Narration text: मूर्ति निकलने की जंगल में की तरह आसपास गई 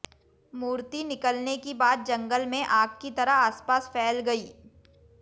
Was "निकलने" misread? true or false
false